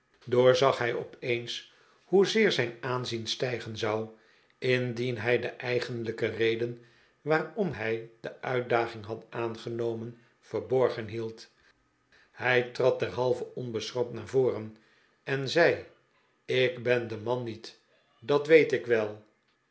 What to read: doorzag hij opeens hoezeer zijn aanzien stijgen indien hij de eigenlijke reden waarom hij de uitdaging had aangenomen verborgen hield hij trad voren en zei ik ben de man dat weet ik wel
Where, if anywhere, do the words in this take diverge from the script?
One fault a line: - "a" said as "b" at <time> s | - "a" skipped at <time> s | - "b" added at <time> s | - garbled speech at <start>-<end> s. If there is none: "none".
- "zou" added at 3.8 s
- "derhalve onbeschroomd naar" added at 13.0 s
- "niet" added at 17.4 s